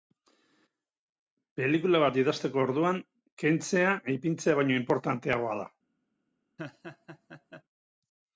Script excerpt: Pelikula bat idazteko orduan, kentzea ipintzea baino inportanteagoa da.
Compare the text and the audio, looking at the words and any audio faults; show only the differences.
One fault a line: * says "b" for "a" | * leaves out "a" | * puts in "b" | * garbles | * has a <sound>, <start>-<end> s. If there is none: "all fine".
* has a laugh, 6.6-7.6 s